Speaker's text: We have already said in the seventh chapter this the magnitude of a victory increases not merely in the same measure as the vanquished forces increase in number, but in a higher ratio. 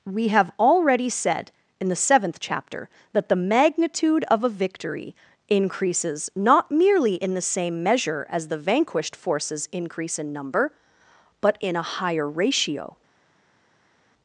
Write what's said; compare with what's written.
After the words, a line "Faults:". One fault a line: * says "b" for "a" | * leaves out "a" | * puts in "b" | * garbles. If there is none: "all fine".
We have already said in the seventh chapter that the magnitude of a victory increases not merely in the same measure as the vanquished forces increase in number, but in a higher ratio.
Faults:
* says "that" for "this"